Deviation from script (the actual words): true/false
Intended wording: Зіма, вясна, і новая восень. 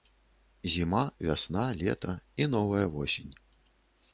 true